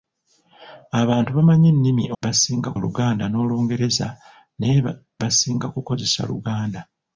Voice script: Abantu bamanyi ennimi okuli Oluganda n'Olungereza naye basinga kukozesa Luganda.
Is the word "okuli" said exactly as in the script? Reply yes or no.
no